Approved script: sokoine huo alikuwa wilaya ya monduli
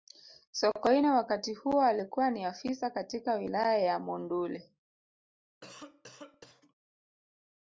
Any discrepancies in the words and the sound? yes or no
yes